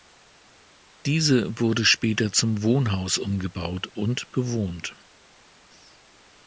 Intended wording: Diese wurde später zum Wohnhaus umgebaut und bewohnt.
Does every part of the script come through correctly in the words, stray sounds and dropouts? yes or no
yes